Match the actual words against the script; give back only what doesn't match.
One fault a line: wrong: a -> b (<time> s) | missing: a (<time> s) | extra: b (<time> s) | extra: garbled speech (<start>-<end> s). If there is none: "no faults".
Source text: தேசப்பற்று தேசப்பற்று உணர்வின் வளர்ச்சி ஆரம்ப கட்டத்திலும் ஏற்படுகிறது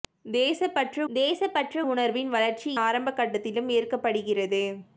no faults